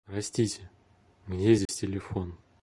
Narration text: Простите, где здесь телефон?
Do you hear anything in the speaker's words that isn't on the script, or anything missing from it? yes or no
no